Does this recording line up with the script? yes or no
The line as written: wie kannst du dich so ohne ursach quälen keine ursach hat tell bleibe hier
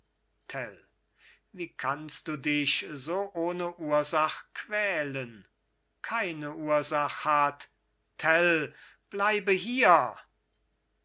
yes